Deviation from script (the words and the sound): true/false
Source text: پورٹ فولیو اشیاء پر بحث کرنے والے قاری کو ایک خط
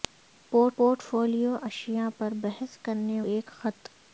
true